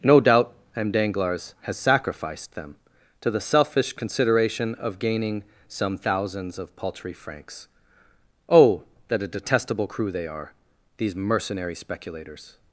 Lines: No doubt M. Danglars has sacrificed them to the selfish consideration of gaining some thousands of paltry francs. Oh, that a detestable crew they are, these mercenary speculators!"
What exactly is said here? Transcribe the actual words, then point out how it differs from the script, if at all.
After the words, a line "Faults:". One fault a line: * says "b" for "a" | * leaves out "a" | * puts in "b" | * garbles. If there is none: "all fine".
No doubt M. Danglars has sacrificed them to the selfish consideration of gaining some thousands of paltry francs. Oh, that a detestable crew they are, these mercenary speculators!"
Faults:
all fine